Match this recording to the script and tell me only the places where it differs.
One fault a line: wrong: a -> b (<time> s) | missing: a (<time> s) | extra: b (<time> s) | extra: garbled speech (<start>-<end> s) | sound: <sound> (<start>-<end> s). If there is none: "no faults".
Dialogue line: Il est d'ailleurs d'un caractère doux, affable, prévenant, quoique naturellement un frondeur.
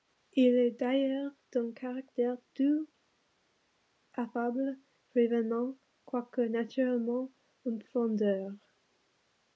no faults